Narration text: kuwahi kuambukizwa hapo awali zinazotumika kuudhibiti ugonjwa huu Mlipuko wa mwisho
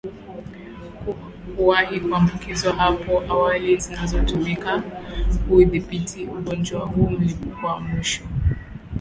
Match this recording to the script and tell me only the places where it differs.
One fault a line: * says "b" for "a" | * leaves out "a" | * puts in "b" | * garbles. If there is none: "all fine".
all fine